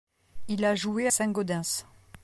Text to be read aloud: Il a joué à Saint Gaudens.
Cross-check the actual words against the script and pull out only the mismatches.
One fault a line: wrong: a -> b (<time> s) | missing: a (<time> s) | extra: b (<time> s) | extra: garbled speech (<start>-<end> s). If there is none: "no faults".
missing: à (1.1 s)